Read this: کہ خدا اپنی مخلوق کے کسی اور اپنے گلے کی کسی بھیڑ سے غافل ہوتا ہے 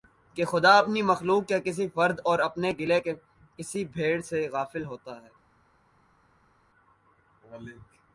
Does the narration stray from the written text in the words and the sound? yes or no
yes